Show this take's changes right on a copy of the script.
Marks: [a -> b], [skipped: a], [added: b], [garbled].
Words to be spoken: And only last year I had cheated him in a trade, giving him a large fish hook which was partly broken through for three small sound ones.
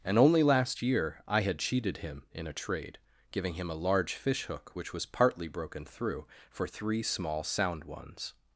And only last year I had cheated him in a trade, giving him a large fish hook which was partly broken through for three small sound ones.